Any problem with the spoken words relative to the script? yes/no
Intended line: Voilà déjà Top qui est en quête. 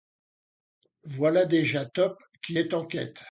no